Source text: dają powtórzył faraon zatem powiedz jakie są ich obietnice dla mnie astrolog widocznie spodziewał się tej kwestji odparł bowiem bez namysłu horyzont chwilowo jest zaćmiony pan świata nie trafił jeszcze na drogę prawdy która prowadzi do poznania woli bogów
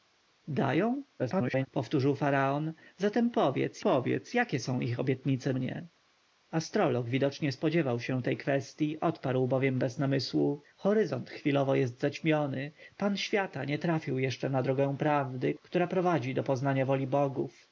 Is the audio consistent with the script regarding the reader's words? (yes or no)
no